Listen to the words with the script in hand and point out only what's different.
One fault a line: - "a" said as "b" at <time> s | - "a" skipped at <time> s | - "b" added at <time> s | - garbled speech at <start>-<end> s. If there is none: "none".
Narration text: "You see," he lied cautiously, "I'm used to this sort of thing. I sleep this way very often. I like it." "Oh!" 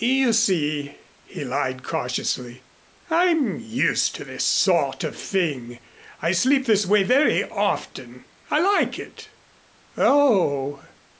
none